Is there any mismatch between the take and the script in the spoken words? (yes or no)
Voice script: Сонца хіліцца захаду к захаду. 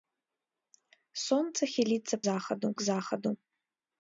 no